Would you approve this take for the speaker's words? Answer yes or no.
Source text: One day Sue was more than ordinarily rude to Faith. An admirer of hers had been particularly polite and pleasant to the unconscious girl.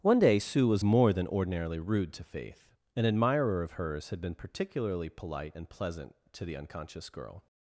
yes